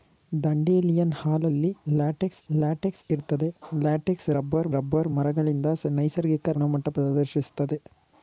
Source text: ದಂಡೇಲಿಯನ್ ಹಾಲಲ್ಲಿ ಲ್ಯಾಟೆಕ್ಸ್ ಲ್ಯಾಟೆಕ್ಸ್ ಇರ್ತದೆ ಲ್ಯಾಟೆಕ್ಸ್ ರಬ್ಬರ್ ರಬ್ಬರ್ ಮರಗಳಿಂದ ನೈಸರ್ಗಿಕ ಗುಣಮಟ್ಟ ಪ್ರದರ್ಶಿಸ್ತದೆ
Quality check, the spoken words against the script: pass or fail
pass